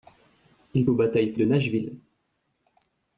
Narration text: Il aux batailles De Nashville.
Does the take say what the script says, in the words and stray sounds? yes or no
yes